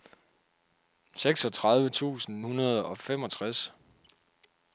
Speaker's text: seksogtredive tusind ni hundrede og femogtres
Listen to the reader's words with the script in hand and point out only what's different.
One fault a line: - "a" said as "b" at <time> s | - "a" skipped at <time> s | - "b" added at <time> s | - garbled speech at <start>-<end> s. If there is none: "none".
- "ni" skipped at 2.5 s